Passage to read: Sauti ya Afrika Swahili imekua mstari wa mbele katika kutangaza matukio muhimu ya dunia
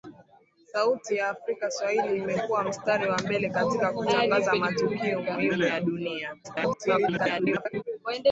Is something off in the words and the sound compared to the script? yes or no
yes